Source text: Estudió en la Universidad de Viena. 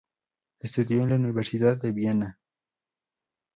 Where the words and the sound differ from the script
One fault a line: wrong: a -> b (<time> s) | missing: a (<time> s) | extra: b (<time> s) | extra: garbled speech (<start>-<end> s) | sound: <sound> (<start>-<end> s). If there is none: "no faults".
no faults